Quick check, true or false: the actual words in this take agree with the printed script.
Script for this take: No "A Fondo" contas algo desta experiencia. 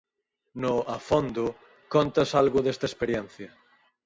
true